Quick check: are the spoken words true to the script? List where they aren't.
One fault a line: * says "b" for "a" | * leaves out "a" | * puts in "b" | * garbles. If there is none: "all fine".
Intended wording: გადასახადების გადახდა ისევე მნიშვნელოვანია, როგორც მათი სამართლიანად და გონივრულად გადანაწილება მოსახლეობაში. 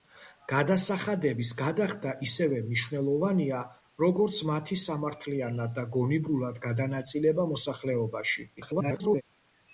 * garbles